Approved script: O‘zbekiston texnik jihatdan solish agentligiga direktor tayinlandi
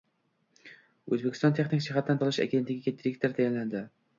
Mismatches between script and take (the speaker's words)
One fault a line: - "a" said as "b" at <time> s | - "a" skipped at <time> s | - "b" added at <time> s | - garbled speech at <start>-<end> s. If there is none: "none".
none